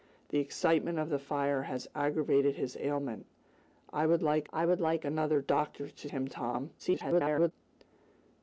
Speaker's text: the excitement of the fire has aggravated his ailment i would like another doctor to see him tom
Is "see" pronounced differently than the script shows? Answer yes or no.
yes